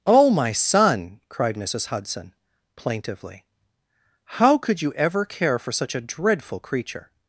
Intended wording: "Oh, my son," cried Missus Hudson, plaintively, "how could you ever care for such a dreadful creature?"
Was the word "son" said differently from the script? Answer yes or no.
no